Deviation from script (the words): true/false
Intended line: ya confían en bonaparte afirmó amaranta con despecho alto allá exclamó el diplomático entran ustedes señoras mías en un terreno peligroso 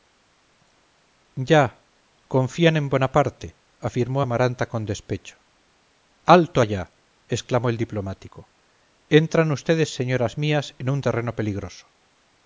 false